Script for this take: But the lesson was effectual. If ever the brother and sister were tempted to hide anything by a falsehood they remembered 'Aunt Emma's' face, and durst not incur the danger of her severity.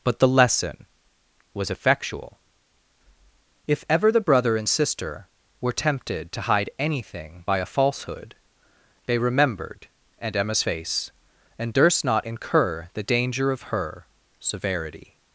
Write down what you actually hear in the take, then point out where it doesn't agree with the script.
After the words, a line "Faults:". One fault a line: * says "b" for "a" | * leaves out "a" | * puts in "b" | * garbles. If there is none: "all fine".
But the lesson was effectual. If ever the brother and sister were tempted to hide anything by a falsehood they remembered 'Aunt Emma's' face, and durst not incur the danger of her severity.
Faults:
all fine